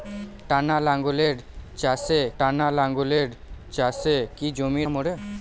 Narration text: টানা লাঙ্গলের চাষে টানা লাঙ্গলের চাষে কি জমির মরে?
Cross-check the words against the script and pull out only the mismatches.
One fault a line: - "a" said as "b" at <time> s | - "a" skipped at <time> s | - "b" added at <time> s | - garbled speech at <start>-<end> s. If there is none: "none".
none